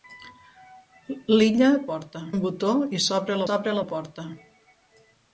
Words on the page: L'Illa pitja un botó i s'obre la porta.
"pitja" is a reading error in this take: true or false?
true